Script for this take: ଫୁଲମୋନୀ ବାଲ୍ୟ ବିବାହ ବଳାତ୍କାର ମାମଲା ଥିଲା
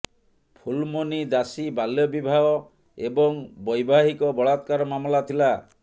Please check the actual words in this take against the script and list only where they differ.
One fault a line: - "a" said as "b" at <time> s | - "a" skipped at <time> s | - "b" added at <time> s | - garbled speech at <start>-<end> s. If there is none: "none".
- "ଦାସୀ" added at 1.3 s
- "ଏବଂ ବୈବାହିକ" added at 3.0 s